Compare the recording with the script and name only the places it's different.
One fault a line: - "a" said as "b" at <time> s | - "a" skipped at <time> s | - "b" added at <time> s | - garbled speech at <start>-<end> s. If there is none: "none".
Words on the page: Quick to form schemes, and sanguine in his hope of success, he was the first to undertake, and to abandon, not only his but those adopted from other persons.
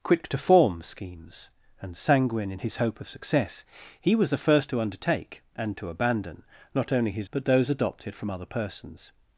none